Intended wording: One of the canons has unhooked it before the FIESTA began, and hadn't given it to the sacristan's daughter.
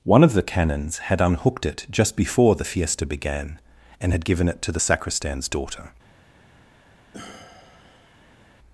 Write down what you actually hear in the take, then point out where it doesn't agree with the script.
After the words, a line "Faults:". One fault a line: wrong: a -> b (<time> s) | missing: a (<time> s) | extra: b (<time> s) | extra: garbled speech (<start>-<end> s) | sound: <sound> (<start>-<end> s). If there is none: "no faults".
One of the canons had unhooked it just before the FIESTA began, and had given it to the sacristan's daughter.
Faults:
wrong: has -> had (1.0 s)
extra: just (1.9 s)
wrong: hadn't -> had (4.1 s)
sound: sigh (7.1-8.5 s)